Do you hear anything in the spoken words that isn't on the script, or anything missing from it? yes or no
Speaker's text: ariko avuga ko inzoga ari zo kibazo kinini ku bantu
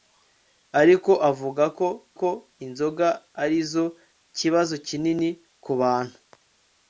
yes